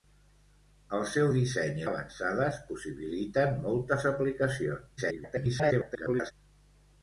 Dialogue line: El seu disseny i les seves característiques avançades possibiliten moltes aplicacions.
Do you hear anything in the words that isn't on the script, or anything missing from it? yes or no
yes